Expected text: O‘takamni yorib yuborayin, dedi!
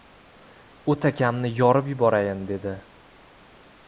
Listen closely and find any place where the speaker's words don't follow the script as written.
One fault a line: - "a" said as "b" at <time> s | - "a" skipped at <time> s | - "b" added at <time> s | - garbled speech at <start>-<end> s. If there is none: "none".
none